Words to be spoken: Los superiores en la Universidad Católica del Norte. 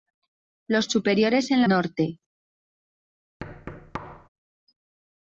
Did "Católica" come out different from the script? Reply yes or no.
yes